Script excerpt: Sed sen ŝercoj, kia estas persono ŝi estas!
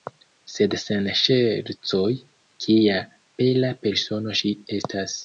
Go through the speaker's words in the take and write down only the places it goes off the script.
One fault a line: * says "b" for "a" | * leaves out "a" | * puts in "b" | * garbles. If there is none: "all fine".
* says "bela" for "estas"